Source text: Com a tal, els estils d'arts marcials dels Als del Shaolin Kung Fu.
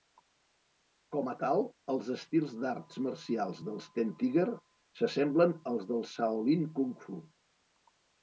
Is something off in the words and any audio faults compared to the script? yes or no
yes